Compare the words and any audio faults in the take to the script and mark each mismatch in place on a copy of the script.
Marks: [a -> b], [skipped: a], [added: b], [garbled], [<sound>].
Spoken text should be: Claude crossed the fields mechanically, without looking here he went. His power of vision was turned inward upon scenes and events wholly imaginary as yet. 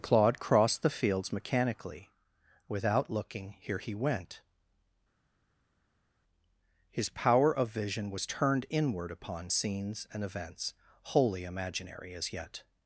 Claude crossed the fields mechanically, without looking here he went. His power of vision was turned inward upon scenes and events wholly imaginary as yet.